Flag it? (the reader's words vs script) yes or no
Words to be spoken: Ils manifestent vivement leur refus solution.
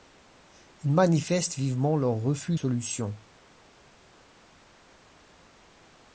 no